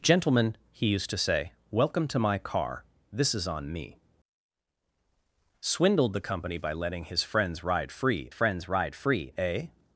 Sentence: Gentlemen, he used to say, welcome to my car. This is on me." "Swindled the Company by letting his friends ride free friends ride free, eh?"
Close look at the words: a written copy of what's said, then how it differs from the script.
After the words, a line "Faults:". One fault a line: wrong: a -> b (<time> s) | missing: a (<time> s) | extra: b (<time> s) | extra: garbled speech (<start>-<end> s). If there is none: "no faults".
Gentlemen, he used to say, welcome to my car. This is on me." "Swindled the Company by letting his friends ride free friends ride free, eh?"
Faults:
no faults